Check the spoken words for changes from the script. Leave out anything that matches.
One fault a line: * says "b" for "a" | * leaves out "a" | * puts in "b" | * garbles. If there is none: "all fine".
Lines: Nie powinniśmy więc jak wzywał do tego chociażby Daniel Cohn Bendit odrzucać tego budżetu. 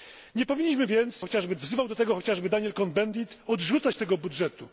* says "chociażby" for "jak"